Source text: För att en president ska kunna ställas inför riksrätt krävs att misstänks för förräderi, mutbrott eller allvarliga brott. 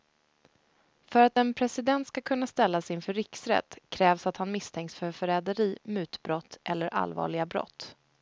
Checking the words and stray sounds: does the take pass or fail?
fail